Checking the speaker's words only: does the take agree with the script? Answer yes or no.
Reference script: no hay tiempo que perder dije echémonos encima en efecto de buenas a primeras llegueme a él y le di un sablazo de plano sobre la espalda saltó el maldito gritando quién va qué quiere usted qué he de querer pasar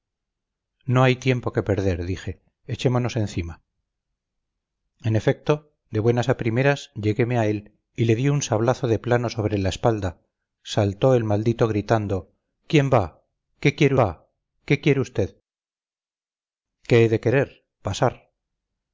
no